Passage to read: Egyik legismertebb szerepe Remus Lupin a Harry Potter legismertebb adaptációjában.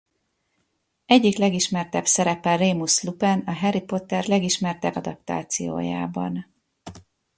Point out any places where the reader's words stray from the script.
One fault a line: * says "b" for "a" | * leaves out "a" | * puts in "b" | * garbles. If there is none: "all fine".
all fine